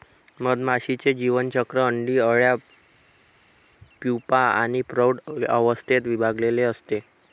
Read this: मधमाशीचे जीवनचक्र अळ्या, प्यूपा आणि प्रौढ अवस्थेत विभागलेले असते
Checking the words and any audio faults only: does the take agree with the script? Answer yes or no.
no